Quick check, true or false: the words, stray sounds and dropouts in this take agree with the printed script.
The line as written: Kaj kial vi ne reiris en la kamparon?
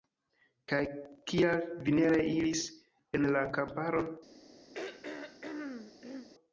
false